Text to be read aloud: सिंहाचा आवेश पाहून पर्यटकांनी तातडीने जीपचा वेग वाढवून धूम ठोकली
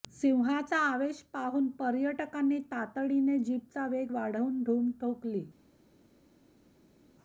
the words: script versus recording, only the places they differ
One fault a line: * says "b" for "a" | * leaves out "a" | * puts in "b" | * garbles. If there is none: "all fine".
all fine